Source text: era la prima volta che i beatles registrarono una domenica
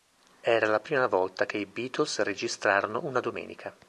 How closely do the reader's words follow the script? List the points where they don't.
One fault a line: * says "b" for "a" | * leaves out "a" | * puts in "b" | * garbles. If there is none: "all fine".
all fine